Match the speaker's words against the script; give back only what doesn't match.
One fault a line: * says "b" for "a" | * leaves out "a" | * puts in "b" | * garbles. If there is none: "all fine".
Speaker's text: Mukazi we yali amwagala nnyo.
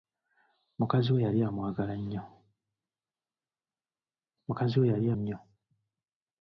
* leaves out "amwagala"